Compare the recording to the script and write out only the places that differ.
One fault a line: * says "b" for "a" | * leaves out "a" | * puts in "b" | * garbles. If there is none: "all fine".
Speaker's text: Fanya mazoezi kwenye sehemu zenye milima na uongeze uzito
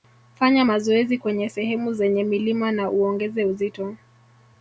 all fine